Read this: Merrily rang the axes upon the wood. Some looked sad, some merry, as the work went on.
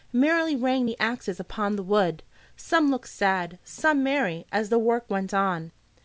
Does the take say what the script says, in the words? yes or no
yes